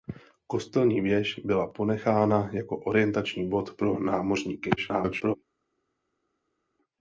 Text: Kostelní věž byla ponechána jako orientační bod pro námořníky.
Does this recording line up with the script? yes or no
no